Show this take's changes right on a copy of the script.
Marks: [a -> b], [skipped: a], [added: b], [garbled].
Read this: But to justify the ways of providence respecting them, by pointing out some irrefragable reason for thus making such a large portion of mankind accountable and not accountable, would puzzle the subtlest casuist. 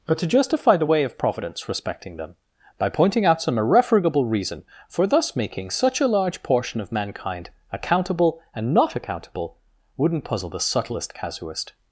But to justify the [ways -> way] of providence respecting them, by pointing out some irrefragable reason for thus making such a large portion of mankind accountable and not accountable, [would -> wouldn't] puzzle the subtlest casuist.